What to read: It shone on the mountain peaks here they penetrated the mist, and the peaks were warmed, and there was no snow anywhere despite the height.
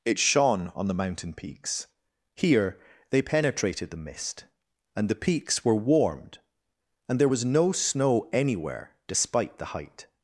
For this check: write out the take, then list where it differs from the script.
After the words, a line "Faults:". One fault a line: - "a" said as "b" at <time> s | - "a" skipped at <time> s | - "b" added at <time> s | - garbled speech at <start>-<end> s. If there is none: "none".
It shone on the mountain peaks here they penetrated the mist, and the peaks were warmed, and there was no snow anywhere despite the height.
Faults:
none